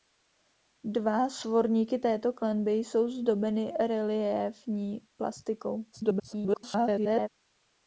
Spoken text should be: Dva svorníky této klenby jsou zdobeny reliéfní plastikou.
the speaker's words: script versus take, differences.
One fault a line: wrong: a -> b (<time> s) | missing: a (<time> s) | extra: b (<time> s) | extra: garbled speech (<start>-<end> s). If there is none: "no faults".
extra: garbled speech (5.9-7.3 s)